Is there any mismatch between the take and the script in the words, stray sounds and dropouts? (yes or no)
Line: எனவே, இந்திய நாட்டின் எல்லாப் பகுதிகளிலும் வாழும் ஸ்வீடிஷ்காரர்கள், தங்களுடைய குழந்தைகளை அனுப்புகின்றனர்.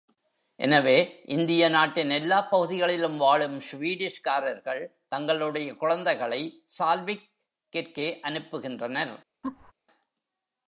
yes